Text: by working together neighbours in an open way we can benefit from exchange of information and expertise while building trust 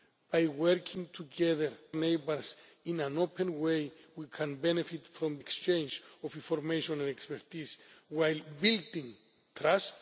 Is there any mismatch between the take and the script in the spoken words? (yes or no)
no